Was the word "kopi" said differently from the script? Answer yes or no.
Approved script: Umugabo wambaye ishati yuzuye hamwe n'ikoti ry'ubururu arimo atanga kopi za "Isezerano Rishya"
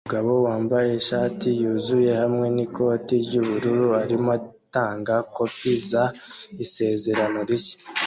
no